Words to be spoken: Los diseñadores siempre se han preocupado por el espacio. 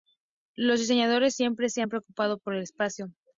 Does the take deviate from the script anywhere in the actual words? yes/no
no